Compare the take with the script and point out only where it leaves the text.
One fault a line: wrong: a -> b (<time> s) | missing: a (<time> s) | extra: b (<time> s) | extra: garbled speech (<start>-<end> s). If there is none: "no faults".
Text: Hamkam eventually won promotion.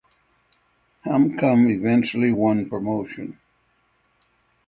no faults